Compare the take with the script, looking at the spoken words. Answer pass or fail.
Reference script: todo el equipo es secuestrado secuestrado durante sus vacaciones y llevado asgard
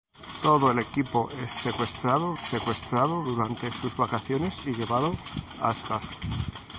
pass